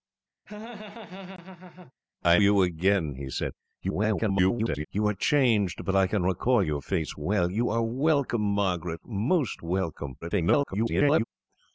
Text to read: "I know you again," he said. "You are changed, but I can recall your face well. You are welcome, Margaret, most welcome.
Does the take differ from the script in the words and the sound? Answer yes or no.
yes